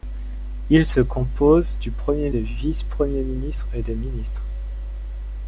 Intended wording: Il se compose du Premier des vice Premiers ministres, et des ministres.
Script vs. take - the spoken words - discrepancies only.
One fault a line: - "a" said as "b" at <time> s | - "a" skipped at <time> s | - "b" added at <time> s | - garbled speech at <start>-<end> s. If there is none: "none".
none